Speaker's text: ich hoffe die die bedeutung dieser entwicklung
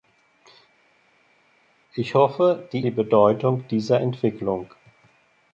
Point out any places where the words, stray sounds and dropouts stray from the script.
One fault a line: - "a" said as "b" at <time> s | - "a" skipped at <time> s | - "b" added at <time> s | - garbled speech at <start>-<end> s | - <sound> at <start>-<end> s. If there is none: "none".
none